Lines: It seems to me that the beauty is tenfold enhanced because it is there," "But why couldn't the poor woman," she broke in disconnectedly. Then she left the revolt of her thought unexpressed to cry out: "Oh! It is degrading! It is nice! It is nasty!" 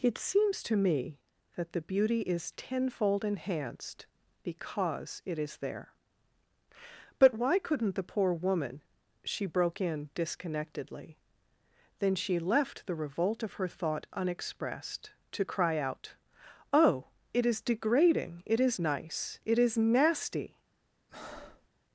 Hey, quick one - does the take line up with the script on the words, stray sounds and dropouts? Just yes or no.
no